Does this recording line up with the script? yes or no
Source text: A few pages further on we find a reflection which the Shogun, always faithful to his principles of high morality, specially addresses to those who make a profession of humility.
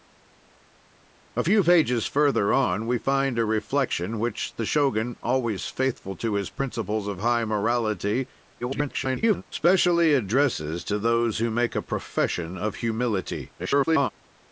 no